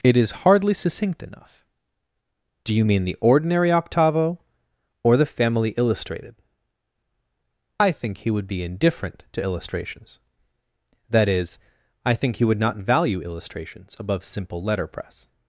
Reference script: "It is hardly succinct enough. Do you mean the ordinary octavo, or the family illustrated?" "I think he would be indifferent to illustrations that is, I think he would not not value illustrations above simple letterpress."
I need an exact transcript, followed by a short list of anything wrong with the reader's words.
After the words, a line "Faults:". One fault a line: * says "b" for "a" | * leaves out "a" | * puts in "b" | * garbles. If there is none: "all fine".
"It is hardly succinct enough. Do you mean the ordinary octavo, or the family illustrated?" "I think he would be indifferent to illustrations that is, I think he would not value illustrations above simple letterpress."
Faults:
* leaves out "not"